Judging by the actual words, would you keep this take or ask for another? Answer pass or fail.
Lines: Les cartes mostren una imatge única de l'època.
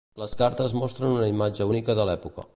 pass